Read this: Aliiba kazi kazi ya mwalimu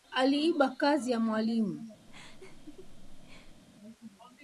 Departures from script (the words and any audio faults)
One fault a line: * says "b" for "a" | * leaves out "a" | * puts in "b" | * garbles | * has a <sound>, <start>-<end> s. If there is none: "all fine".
* leaves out "kazi"
* has a laugh, 2.1-3.6 s